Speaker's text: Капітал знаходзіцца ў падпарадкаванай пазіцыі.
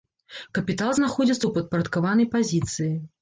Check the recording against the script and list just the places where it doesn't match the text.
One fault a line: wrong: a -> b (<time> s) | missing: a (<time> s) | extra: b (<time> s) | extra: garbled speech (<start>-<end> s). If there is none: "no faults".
no faults